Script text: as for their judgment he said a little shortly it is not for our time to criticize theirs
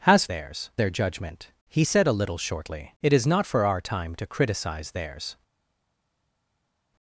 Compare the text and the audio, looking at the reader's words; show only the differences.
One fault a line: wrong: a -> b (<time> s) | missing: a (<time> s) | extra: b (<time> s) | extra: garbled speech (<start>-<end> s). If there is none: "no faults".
wrong: for -> theirs (0.2 s)